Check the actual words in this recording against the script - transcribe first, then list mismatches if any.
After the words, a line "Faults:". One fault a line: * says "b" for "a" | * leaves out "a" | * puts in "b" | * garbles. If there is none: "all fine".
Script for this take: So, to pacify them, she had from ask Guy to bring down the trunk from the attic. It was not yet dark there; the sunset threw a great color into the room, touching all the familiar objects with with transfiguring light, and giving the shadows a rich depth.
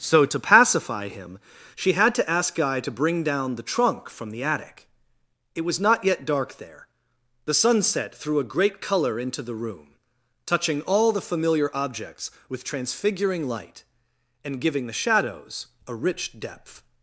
So, to pacify him, she had to ask Guy to bring down the trunk from the attic. It was not yet dark there; the sunset threw a great color into the room, touching all the familiar objects with transfiguring light, and giving the shadows a rich depth.
Faults:
* says "him" for "them"
* says "to" for "from"
* leaves out "with"